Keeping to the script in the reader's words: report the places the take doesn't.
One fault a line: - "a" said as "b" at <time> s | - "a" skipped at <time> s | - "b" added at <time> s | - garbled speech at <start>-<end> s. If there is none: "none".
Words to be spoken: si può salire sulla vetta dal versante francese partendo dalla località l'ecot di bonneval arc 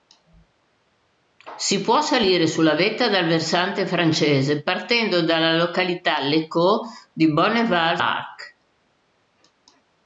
none